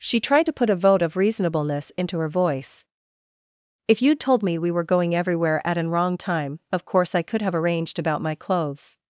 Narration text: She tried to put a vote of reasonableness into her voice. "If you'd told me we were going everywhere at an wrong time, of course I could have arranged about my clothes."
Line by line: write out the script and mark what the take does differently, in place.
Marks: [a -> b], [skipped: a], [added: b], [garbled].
She tried to put a vote of reasonableness into her voice. "If you'd told me we were going everywhere at an wrong time, of course I could have arranged about my clothes."